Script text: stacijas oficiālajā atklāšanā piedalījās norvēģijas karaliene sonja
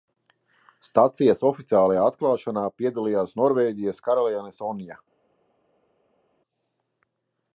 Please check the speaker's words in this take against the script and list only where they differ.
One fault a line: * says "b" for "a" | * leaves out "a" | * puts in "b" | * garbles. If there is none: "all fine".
all fine